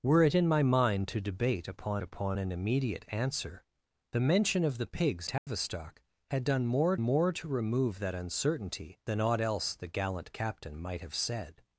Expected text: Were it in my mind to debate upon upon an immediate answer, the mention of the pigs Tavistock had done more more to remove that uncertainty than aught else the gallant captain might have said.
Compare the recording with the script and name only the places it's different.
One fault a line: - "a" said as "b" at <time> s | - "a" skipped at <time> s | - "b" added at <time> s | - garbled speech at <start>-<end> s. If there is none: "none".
none